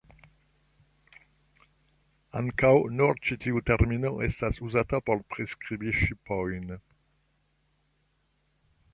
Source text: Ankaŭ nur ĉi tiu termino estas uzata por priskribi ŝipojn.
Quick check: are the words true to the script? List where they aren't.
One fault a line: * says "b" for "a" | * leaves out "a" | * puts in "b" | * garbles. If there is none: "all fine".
all fine